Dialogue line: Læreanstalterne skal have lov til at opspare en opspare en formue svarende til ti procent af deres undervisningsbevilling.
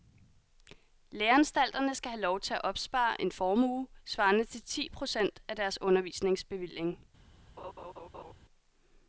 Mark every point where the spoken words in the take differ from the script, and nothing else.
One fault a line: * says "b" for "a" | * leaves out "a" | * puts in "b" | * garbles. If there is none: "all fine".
* leaves out "opspare en"